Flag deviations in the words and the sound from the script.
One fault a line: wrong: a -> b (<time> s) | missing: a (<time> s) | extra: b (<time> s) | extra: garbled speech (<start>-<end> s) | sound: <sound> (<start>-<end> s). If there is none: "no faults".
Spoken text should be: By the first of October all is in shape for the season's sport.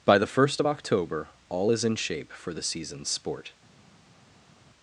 no faults